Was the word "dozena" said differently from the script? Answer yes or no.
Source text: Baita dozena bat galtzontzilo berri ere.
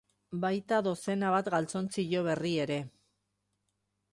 no